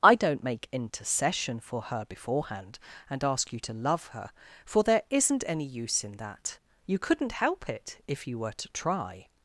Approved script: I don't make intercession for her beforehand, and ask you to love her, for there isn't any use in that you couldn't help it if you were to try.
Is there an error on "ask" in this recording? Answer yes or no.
no